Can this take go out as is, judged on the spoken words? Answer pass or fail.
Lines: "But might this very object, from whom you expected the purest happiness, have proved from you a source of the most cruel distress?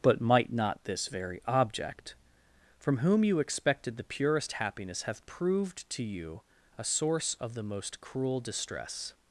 fail